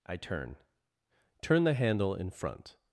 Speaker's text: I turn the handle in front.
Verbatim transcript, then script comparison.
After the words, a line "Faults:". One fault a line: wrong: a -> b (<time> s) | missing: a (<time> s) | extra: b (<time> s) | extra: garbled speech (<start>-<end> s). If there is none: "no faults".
I turn turn the handle in front.
Faults:
extra: turn (1.4 s)